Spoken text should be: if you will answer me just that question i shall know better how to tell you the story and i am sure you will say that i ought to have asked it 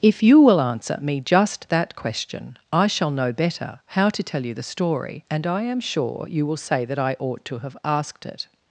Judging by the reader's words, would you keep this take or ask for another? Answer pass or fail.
pass